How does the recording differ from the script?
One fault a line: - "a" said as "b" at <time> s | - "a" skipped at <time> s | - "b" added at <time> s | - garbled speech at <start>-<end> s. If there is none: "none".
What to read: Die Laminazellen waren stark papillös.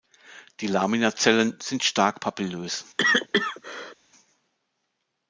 - "waren" said as "sind" at 1.6 s